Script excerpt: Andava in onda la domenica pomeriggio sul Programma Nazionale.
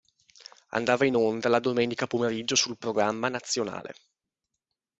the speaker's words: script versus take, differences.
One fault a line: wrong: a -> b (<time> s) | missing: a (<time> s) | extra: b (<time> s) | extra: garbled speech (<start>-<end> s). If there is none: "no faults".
no faults